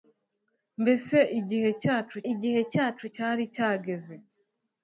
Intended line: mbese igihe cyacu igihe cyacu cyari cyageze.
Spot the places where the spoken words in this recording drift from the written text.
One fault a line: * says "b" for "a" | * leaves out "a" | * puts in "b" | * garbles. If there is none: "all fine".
all fine